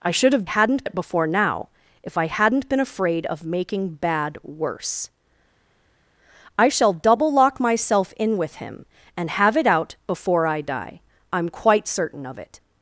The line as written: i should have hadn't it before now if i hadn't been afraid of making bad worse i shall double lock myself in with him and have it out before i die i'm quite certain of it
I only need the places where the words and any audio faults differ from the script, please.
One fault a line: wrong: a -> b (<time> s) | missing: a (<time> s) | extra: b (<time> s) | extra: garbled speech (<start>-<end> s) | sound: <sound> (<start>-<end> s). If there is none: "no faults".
no faults